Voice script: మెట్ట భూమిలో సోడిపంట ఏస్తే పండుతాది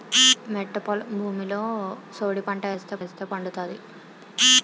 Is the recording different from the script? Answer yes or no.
yes